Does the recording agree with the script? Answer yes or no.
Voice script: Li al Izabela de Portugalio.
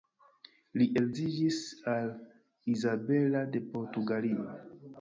no